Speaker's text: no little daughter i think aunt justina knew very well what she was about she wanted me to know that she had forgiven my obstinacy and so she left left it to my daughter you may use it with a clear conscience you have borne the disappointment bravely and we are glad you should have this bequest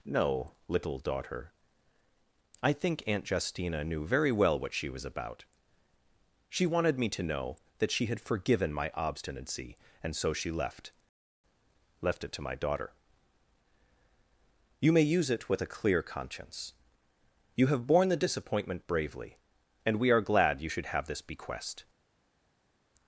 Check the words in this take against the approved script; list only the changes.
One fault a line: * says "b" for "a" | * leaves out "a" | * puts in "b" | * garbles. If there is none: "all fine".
all fine